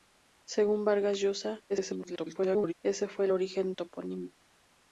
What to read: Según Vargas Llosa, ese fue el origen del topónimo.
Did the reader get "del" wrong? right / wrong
wrong